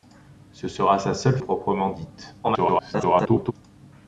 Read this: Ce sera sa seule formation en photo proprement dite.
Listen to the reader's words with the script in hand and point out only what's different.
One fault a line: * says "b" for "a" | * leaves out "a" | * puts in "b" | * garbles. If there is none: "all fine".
* leaves out "formation en photo"
* garbles